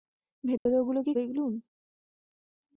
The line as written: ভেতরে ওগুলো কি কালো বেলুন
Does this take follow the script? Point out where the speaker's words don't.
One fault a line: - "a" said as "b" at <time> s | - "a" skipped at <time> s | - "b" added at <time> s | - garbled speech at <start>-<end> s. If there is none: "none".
- "কালো" skipped at 1.1 s